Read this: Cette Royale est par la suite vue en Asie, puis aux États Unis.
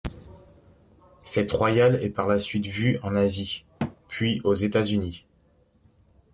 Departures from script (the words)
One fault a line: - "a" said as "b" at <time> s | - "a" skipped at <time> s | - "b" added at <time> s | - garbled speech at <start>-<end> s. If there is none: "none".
none